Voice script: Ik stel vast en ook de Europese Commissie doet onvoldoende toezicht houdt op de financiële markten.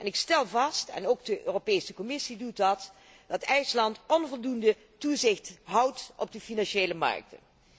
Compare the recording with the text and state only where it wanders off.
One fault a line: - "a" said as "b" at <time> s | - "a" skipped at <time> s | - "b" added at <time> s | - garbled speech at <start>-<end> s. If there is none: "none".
- "dat dat IJsland" added at 2.6 s